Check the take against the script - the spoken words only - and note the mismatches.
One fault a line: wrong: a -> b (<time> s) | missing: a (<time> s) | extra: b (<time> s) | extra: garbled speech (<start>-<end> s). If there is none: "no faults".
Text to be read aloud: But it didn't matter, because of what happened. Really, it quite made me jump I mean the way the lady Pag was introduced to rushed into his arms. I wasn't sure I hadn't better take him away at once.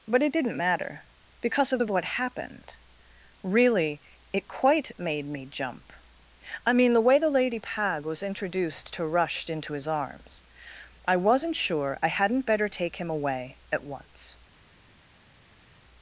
extra: of (1.8 s)